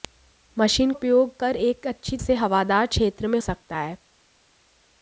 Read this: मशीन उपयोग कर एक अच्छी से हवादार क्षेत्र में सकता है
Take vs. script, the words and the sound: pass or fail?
pass